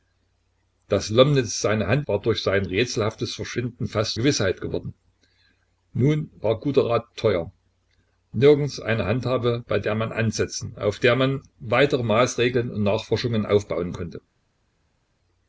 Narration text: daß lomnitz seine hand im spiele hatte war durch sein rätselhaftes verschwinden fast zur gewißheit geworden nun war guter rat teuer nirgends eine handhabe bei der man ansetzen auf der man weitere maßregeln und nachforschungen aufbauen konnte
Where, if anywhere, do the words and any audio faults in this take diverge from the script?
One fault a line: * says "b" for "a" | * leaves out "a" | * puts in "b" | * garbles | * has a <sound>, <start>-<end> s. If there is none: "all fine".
* leaves out "im spiele hatte"
* leaves out "zur"